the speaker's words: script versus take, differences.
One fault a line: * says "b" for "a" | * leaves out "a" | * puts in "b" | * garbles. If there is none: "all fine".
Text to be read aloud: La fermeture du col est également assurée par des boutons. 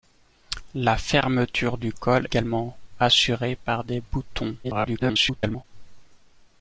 * leaves out "est"
* garbles